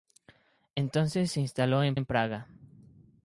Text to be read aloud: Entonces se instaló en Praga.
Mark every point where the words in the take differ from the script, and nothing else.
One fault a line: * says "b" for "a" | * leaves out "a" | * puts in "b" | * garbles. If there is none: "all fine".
* puts in "en"